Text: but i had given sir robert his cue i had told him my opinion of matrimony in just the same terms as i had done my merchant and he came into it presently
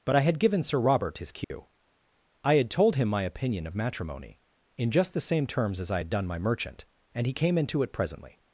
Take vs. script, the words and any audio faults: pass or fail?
fail